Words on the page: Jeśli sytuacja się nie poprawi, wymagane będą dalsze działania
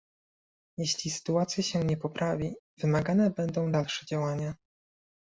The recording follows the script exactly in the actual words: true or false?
true